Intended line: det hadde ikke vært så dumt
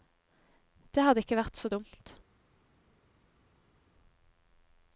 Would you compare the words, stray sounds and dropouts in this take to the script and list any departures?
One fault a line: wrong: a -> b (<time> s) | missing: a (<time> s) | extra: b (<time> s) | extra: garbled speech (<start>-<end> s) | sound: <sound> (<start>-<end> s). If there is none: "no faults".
no faults